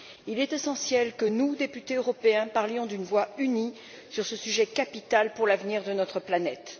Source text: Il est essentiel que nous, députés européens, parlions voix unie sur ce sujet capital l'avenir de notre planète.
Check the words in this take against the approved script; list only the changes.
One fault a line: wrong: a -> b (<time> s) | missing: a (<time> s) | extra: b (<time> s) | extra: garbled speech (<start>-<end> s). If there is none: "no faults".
extra: d'une (2.9 s)
extra: pour (5.3 s)